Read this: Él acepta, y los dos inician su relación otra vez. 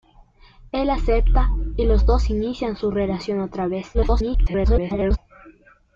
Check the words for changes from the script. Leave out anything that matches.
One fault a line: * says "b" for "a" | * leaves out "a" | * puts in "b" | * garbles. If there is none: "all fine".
* garbles